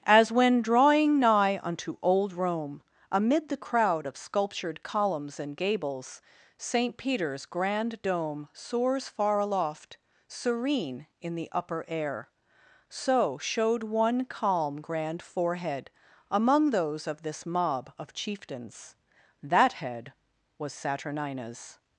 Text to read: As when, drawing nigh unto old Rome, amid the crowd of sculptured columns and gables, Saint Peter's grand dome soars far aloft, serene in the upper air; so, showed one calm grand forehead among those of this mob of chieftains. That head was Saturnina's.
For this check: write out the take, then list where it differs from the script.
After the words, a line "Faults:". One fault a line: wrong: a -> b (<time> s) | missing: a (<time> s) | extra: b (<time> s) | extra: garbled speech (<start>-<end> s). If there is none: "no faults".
As when, drawing nigh unto old Rome, amid the crowd of sculptured columns and gables, Saint Peter's grand dome soars far aloft, serene in the upper air; so, showed one calm grand forehead among those of this mob of chieftains. That head was Saturnina's.
Faults:
no faults